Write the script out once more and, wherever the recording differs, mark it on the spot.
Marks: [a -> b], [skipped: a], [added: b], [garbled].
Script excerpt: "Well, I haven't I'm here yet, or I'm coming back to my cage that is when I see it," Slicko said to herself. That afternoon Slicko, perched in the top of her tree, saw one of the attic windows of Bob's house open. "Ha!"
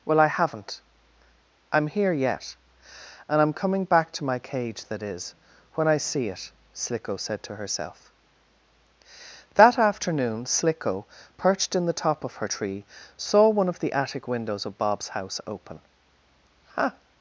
"Well, I haven't I'm here yet, [or -> and] I'm coming back to my cage that is when I see it," Slicko said to herself. That afternoon Slicko, perched in the top of her tree, saw one of the attic windows of Bob's house open. "Ha!"